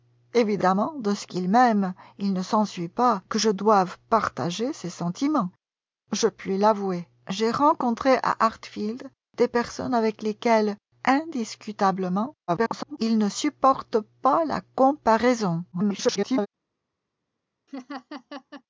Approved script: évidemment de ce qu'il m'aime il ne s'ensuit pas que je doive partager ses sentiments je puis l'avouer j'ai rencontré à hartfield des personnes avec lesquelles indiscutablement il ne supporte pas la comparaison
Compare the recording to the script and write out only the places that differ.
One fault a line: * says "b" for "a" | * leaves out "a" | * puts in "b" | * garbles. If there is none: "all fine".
* garbles
* garbles